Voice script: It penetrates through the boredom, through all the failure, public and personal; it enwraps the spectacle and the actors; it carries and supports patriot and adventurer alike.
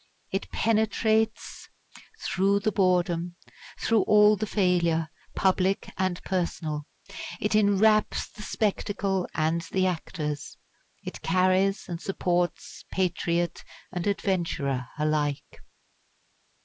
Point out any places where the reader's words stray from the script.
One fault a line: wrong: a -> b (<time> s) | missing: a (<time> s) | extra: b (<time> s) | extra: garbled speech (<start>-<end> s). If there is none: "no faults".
no faults